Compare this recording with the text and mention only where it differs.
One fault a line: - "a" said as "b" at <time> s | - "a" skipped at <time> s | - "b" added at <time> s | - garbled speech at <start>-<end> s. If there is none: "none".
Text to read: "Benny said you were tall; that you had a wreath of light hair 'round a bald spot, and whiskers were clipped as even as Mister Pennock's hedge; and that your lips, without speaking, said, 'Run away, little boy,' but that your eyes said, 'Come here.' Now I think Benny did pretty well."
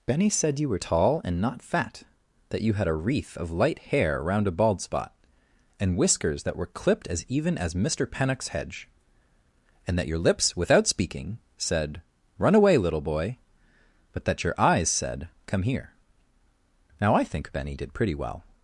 - "and not fat" added at 1.3 s
- "that" added at 6.4 s